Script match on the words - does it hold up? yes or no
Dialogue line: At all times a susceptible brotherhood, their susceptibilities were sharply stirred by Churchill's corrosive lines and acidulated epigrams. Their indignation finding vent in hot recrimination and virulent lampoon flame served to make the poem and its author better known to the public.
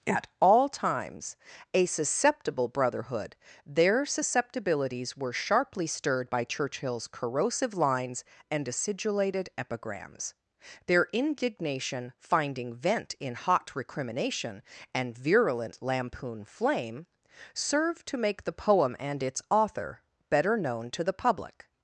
yes